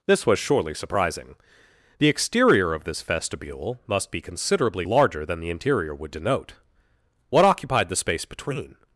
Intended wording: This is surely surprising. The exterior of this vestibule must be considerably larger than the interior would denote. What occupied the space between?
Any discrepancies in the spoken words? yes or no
yes